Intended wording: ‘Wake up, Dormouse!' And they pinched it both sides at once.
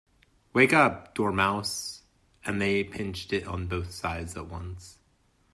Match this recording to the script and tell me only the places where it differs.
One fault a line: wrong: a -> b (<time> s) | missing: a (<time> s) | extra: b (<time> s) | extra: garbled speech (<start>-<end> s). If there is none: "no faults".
extra: on (3.5 s)